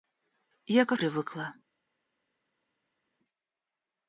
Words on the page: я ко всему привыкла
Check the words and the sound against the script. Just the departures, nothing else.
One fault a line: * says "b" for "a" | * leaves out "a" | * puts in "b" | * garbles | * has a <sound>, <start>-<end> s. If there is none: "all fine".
* leaves out "всему"